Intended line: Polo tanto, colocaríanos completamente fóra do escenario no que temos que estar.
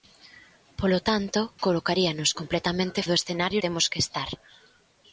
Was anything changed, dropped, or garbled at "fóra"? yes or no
yes